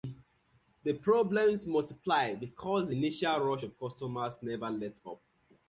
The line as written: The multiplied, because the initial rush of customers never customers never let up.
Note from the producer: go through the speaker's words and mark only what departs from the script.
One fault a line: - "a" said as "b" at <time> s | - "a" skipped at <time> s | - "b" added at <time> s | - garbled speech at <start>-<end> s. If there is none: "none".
- "problems" added at 0.9 s
- "customers never" skipped at 4.7 s